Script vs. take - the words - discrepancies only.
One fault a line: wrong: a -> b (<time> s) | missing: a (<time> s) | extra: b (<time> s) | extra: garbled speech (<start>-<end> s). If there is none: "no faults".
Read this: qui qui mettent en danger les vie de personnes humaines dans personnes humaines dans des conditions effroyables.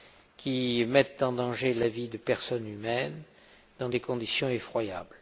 missing: qui (0.8 s)
wrong: les -> la (1.7 s)
missing: personnes humaines dans (3.9 s)